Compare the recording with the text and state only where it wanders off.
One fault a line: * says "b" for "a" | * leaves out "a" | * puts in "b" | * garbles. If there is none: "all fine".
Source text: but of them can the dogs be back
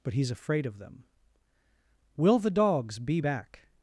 * puts in "he's afraid"
* says "will" for "can"